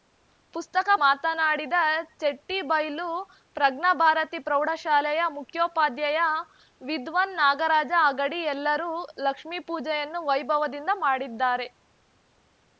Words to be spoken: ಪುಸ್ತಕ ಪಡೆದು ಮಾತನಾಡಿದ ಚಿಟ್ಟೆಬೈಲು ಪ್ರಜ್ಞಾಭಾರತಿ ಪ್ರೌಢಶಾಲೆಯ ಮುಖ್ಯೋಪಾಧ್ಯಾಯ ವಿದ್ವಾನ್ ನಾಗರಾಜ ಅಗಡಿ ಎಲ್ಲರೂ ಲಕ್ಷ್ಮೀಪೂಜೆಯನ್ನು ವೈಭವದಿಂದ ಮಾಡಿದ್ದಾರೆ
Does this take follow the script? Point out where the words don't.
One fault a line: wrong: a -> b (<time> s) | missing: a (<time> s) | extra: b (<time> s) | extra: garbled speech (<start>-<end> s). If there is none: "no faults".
missing: ಪಡೆದು (0.9 s)